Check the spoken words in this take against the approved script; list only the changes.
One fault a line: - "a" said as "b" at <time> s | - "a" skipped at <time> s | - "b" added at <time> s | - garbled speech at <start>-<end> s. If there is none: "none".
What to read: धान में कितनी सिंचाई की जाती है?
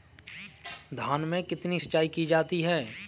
none